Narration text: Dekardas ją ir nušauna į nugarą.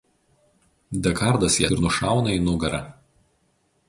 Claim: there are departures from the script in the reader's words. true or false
false